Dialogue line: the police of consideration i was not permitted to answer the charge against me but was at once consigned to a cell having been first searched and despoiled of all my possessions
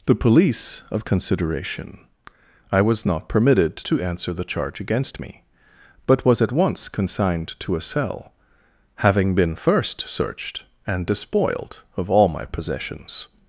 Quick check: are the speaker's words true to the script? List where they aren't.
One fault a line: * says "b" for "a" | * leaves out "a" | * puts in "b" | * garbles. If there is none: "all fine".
all fine